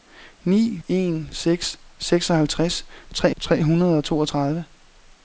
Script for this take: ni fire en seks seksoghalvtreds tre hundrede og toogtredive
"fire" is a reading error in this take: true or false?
true